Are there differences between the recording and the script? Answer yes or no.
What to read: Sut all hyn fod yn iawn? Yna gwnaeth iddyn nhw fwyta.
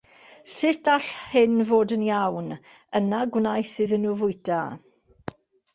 no